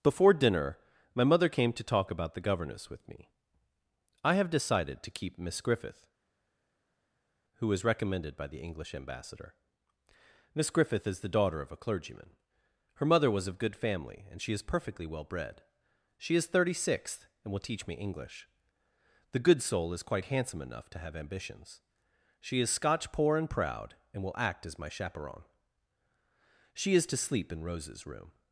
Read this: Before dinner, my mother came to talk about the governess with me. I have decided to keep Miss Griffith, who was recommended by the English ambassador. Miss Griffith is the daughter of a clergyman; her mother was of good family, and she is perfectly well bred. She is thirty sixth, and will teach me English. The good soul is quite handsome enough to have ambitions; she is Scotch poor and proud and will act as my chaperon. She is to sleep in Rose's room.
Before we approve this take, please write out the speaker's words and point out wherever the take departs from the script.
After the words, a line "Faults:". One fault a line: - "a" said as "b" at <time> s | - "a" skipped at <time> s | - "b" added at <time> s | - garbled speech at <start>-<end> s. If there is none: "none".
Before dinner, my mother came to talk about the governess with me. I have decided to keep Miss Griffith, who was recommended by the English ambassador. Miss Griffith is the daughter of a clergyman; her mother was of good family, and she is perfectly well bred. She is thirty sixth, and will teach me English. The good soul is quite handsome enough to have ambitions; she is Scotch poor and proud and will act as my chaperon. She is to sleep in Rose's room.
Faults:
none